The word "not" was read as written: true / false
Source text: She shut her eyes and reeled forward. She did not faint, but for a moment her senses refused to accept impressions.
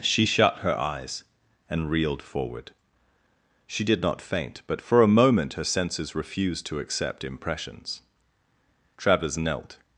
true